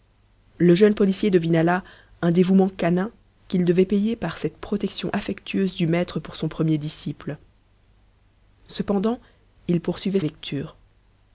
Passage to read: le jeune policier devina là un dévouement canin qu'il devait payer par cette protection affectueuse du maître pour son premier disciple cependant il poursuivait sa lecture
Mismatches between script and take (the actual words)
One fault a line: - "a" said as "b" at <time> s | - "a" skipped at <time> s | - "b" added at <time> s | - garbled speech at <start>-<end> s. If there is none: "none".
- "sa" skipped at 10.2 s